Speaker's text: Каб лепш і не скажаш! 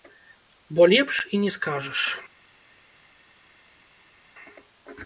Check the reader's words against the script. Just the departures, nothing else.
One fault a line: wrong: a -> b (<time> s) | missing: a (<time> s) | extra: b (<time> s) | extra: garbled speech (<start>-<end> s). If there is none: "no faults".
wrong: Каб -> Бо (0.7 s)